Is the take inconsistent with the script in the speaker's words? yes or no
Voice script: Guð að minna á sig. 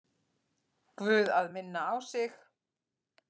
no